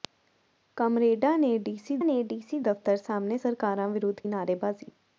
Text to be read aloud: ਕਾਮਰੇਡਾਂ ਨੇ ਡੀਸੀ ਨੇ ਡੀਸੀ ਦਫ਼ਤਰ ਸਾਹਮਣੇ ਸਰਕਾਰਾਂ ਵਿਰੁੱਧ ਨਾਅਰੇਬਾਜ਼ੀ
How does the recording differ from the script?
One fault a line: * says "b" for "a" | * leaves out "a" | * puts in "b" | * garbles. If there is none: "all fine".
all fine